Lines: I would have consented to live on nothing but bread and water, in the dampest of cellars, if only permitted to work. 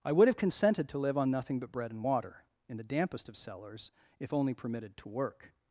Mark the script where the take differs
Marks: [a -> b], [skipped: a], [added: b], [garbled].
I would have consented to live on nothing but bread and water, in the dampest of cellars, if only permitted to work.